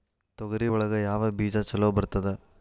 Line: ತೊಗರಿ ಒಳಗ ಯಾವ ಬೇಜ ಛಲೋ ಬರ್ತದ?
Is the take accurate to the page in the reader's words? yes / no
yes